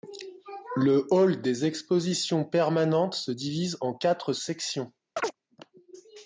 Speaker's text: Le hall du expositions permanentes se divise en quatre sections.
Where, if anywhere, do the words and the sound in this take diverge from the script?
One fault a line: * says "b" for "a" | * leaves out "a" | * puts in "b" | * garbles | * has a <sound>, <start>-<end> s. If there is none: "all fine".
* says "des" for "du"
* has a chirp, 5.2-5.4 s